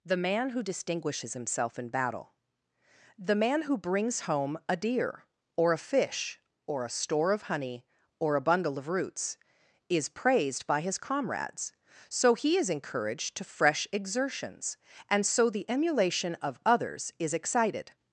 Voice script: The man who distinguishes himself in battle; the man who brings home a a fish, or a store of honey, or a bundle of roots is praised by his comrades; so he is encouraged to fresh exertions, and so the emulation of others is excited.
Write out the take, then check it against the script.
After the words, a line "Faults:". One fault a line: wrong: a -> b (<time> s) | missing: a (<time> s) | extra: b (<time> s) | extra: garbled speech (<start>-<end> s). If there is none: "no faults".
The man who distinguishes himself in battle; the man who brings home a deer, or a fish, or a store of honey, or a bundle of roots is praised by his comrades; so he is encouraged to fresh exertions, and so the emulation of others is excited.
Faults:
extra: deer or (4.8 s)